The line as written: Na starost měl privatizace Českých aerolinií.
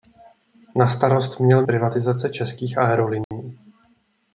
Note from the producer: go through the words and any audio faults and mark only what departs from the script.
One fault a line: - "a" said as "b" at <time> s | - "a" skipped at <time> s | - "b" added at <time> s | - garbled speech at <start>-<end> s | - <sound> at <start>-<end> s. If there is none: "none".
- dropout at 3.2-3.3 s